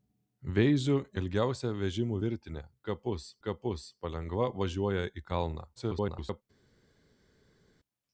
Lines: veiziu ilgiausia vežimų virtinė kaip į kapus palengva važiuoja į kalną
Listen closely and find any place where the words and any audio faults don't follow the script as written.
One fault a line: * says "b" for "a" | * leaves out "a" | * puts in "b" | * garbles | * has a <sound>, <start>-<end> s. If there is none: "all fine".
* says "kapus" for "kaip"
* garbles